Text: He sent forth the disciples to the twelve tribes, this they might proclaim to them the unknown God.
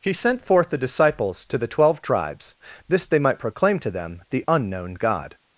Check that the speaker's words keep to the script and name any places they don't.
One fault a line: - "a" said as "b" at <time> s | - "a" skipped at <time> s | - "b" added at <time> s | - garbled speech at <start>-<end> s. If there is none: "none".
none